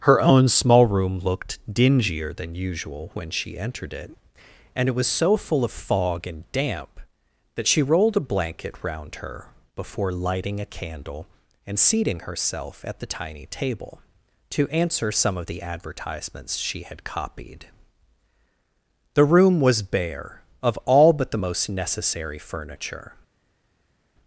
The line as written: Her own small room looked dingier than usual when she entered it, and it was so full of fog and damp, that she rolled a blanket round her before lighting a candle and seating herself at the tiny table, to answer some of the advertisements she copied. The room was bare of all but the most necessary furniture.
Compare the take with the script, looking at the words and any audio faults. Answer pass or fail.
fail